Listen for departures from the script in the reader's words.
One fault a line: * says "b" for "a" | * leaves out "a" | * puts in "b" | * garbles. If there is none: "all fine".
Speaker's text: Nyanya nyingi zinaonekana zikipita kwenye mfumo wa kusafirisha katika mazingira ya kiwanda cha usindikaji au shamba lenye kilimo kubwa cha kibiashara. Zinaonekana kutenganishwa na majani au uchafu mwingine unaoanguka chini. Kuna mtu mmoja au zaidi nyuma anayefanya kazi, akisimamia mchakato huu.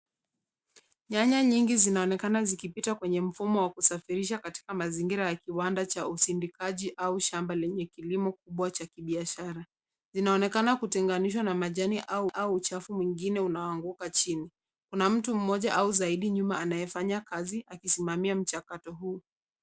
* puts in "au"